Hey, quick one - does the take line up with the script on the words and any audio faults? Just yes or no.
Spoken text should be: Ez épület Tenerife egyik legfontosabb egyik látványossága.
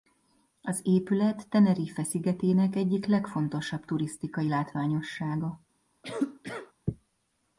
no